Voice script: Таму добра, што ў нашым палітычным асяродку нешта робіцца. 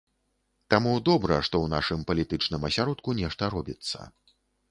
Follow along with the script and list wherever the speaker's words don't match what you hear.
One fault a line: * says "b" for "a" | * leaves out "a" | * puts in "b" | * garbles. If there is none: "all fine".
all fine